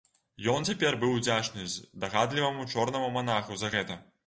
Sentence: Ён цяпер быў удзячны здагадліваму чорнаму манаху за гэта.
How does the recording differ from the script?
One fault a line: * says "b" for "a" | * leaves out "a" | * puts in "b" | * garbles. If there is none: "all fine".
all fine